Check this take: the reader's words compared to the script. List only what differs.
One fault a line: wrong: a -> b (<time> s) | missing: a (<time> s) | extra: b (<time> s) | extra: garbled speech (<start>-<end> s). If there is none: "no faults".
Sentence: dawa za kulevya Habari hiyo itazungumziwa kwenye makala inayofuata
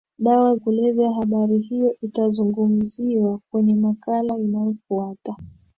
missing: za (0.6 s)